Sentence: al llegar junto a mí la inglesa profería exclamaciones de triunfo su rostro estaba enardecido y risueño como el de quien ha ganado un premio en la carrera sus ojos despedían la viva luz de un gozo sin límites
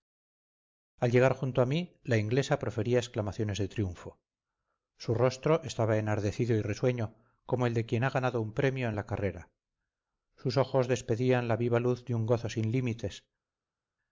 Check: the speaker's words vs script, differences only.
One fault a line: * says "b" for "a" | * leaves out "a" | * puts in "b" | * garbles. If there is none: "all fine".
all fine